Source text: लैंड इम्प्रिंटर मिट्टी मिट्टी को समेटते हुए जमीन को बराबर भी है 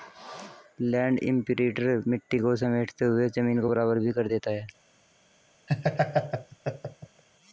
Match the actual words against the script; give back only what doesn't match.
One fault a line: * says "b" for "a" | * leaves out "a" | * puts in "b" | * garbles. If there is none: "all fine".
* leaves out "मिट्टी"
* puts in "कर देता"